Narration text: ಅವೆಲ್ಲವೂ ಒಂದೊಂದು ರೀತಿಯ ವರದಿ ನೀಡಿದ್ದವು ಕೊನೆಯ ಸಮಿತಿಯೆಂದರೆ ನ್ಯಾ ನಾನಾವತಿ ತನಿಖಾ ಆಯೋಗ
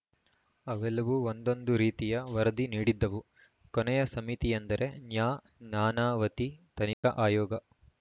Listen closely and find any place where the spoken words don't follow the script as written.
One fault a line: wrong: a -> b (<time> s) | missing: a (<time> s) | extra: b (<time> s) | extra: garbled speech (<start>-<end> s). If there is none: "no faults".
no faults